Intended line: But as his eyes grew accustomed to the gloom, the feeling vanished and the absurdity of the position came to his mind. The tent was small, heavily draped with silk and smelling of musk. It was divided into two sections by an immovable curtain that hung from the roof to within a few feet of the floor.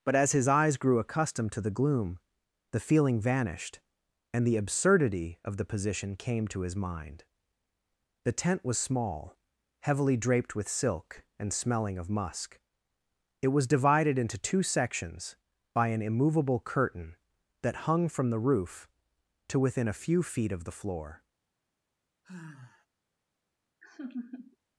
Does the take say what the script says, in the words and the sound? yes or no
no